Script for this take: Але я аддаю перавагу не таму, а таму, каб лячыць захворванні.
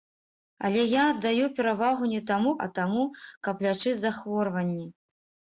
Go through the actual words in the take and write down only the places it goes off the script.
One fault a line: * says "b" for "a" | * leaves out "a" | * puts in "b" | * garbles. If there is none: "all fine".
all fine